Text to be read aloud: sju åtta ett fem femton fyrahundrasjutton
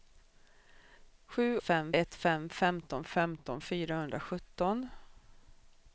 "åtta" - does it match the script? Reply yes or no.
no